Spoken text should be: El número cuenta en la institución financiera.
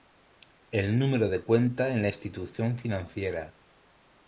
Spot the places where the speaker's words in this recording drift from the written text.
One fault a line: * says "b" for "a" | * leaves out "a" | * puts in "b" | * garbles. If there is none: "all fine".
* puts in "de"